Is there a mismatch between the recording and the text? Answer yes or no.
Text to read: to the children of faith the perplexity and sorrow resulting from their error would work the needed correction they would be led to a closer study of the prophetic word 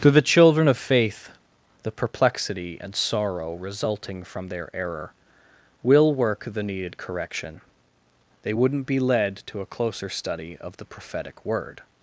yes